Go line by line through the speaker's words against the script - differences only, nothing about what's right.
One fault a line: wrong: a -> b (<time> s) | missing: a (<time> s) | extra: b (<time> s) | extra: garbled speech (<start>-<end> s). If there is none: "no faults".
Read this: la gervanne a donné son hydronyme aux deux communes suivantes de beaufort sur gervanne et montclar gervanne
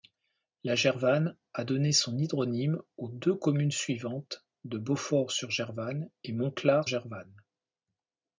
no faults